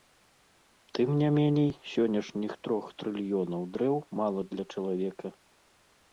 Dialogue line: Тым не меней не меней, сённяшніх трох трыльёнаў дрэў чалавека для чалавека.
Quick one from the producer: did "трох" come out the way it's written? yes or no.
yes